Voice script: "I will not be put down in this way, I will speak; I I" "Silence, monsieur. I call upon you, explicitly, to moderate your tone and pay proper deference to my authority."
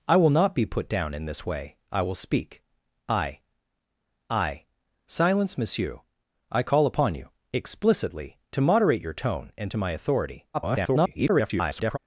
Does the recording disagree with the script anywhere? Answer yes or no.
yes